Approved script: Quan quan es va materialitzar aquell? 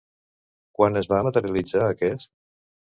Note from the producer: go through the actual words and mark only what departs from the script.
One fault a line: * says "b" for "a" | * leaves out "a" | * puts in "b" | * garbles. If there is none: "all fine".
* leaves out "quan"
* says "aquest" for "aquell"